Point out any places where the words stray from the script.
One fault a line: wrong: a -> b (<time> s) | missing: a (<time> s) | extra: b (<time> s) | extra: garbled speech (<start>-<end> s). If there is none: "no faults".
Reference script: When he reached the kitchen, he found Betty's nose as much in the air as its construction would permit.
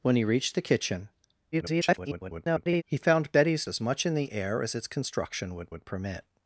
extra: garbled speech (1.5-2.8 s)
missing: nose (3.7 s)
extra: would (5.7 s)